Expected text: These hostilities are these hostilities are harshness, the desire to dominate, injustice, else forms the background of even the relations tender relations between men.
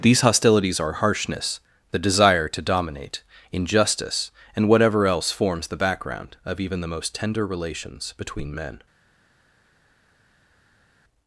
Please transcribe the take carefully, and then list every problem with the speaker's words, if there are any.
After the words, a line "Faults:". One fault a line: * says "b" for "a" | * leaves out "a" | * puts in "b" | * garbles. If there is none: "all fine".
These hostilities are harshness, the desire to dominate, injustice, and whatever else forms the background of even the most tender relations between men.
Faults:
* leaves out "these hostilities are"
* puts in "and whatever"
* says "most" for "relations"